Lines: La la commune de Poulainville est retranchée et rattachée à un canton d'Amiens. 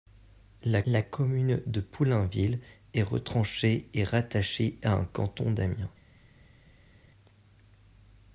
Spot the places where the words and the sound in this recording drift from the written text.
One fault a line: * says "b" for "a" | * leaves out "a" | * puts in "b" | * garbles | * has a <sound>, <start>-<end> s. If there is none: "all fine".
all fine